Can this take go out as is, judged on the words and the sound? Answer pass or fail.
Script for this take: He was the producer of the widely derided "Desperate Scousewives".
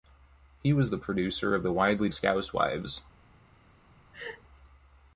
fail